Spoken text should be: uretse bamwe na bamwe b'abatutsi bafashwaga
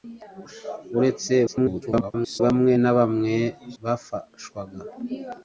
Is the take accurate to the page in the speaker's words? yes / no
no